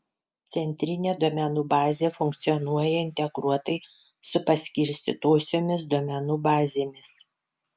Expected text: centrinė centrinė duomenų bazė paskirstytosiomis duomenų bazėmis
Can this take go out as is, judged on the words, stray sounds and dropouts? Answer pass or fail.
fail